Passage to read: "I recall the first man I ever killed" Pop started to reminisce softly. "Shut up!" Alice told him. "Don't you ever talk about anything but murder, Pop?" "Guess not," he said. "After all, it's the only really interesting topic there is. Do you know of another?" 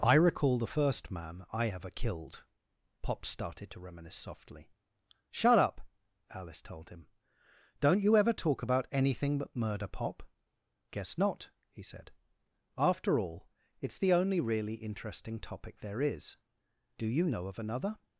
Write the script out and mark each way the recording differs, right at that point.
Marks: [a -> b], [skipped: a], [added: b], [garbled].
"I recall the first man I ever killed" Pop started to reminisce softly. "Shut up!" Alice told him. "Don't you ever talk about anything but murder, Pop?" "Guess not," he said. "After all, it's the only really interesting topic there is. Do you know of another?"